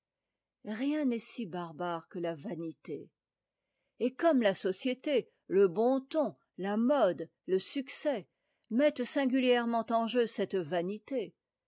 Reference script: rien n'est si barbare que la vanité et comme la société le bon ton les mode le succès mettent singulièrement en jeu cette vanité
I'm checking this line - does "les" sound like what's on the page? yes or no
no